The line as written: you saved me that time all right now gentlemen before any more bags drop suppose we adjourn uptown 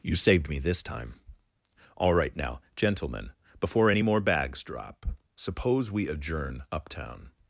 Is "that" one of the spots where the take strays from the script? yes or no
yes